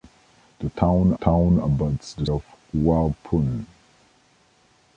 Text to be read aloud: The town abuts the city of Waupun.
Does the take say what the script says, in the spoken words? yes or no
no